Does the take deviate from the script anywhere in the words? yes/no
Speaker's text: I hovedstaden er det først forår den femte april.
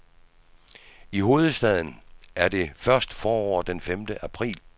no